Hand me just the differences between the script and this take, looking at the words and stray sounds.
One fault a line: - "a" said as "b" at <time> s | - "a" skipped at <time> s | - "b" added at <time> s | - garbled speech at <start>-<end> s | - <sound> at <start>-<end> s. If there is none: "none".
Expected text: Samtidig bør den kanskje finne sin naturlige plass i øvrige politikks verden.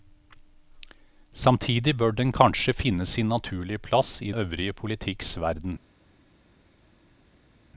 none